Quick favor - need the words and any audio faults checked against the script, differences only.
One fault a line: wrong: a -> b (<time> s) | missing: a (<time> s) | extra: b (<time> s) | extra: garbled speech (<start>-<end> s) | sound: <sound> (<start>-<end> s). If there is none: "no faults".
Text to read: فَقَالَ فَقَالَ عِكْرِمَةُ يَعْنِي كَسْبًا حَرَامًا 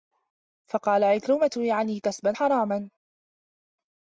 missing: فَقَالَ (1.0 s)